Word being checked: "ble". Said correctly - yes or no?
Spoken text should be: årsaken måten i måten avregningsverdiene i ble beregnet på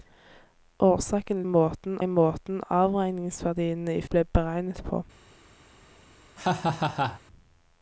yes